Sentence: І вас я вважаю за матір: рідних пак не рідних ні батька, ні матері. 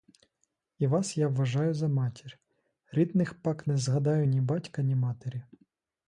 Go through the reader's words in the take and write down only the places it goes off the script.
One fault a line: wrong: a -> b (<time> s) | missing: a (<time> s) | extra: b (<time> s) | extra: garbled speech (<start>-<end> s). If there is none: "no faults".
wrong: рідних -> згадаю (3.8 s)